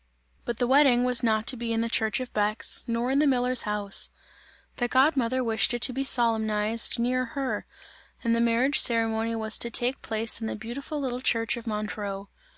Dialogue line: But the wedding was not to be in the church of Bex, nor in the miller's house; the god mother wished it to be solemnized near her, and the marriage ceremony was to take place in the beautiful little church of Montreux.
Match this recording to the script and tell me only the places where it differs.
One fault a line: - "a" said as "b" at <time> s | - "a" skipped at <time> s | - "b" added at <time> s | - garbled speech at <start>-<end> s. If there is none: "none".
none